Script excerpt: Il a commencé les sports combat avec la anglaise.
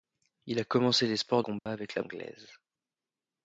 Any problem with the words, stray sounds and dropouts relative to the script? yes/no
yes